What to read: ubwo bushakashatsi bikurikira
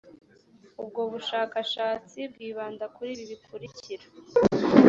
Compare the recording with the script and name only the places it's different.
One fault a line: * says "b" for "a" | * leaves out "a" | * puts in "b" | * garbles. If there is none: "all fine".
* puts in "bwibanda kuri ibi"